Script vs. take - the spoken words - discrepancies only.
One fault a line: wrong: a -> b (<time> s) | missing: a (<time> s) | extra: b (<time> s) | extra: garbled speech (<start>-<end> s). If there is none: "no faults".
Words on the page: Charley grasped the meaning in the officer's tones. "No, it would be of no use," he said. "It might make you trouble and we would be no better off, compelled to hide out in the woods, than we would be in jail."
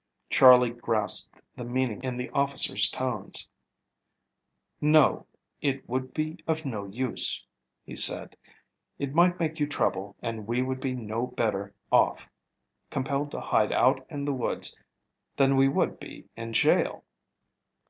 no faults